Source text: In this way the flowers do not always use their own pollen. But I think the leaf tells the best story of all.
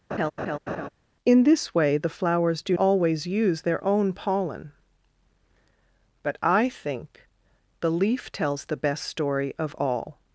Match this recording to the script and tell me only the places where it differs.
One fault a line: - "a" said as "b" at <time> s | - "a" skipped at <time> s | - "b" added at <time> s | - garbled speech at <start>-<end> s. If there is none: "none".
- "not" skipped at 2.8 s